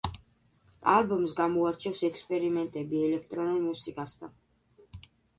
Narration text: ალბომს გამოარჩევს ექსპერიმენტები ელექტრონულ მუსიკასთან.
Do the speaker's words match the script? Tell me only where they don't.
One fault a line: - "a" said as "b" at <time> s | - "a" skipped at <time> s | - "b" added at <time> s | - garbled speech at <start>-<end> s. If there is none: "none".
none